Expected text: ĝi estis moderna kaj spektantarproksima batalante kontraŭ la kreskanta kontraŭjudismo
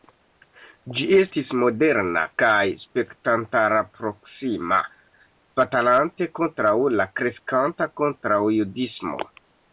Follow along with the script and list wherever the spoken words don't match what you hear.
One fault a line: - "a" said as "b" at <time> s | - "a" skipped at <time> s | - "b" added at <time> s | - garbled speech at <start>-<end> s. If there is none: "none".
none